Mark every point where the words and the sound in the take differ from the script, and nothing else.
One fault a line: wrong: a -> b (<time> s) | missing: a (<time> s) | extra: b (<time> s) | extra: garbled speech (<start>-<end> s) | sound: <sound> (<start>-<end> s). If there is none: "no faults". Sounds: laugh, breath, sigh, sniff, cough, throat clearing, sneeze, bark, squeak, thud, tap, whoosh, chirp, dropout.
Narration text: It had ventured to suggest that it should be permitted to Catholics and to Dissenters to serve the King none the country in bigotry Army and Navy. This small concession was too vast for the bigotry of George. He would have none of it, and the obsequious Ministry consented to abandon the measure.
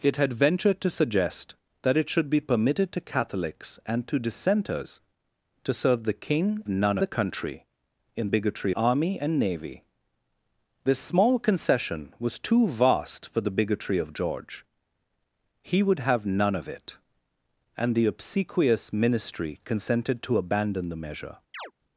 sound: chirp (21.5-21.7 s)